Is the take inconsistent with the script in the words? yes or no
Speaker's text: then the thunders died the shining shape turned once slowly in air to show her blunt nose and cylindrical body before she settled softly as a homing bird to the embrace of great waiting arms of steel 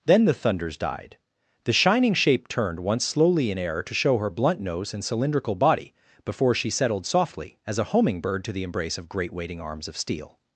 no